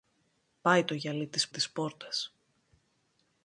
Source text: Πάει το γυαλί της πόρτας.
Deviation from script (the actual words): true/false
true